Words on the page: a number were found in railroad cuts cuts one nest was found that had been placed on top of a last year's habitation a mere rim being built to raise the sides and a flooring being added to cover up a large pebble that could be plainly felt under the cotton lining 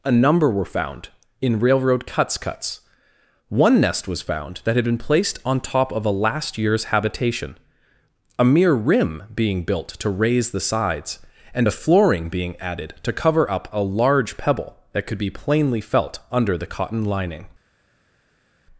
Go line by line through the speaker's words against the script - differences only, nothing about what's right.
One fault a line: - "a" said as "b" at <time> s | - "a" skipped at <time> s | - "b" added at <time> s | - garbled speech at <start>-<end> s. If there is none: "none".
none